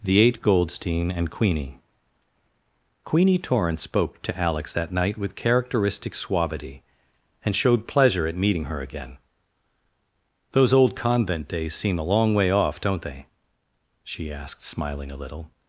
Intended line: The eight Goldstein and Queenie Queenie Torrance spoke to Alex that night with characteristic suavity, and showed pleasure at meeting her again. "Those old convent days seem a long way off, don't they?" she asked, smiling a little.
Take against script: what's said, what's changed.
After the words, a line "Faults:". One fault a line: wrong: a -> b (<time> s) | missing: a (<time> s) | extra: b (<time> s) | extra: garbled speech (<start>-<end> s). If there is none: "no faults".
The eight Goldstein and Queenie Queenie Torrance spoke to Alex that night with characteristic suavity, and showed pleasure at meeting her again. "Those old convent days seem a long way off, don't they?" she asked, smiling a little.
Faults:
no faults